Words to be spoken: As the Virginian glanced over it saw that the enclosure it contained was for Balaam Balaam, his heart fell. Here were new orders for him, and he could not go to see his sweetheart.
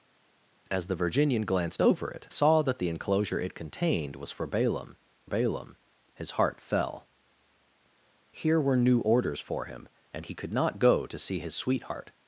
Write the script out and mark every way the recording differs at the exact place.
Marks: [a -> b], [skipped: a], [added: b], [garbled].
As the Virginian glanced over it saw that the enclosure it contained was for Balaam Balaam, his heart fell. Here were new orders for him, and he could not go to see his sweetheart.